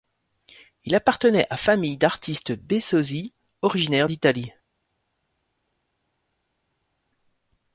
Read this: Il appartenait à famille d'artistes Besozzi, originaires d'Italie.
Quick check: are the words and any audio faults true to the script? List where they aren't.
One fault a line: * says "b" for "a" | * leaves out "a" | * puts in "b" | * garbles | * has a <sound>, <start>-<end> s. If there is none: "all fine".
all fine